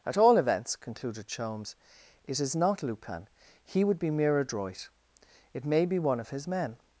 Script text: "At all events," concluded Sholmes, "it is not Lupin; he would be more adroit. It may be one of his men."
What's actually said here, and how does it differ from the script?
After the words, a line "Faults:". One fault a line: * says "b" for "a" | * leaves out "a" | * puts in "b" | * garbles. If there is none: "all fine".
"At all events," concluded Sholmes, "it is not Lupin; he would be mere adroit. It may be one of his men."
Faults:
* says "mere" for "more"